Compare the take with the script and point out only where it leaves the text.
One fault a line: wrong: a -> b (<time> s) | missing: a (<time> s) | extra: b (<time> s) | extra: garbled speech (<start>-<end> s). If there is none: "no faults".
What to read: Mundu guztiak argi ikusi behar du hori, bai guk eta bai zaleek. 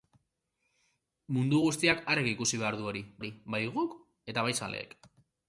extra: hori (3.2 s)